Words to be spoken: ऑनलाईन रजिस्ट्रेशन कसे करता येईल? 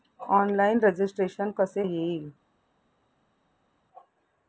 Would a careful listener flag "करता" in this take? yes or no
yes